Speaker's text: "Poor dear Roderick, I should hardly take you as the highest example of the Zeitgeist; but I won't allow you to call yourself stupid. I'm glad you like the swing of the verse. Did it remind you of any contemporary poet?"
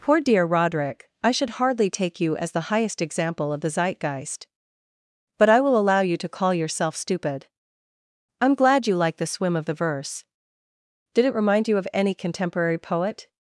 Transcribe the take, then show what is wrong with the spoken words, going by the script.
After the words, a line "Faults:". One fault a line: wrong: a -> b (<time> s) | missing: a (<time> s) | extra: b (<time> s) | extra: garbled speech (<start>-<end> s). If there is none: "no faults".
"Poor dear Roderick, I should hardly take you as the highest example of the Zeitgeist; but I will allow you to call yourself stupid. I'm glad you like the swim of the verse. Did it remind you of any contemporary poet?"
Faults:
wrong: won't -> will (5.6 s)
wrong: swing -> swim (9.3 s)